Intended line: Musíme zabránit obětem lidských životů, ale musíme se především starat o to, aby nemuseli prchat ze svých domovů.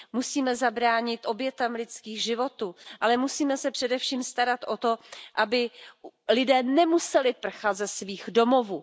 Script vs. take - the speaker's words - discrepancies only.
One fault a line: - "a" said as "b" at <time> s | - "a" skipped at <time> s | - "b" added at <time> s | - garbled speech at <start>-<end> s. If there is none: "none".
- "lidé" added at 6.3 s